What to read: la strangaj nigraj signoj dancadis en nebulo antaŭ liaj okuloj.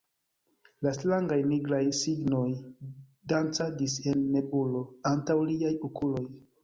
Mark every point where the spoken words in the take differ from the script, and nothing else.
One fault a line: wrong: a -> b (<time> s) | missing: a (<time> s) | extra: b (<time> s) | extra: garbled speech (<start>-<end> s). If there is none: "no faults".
no faults